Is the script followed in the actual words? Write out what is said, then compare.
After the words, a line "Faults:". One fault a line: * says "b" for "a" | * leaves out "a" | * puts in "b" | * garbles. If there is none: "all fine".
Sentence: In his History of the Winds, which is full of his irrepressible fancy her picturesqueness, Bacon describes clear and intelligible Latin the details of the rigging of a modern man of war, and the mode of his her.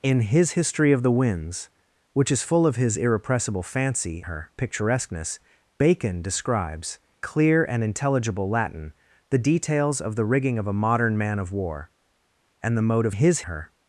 In his History of the Winds, which is full of his irrepressible fancy her picturesqueness, Bacon describes clear and intelligible Latin the details of the rigging of a modern man of war, and the mode of his her.
Faults:
all fine